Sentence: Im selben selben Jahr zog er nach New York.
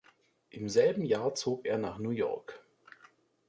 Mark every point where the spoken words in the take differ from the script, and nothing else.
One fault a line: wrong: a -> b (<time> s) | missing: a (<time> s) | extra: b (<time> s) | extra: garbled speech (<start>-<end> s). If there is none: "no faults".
missing: selben (1.0 s)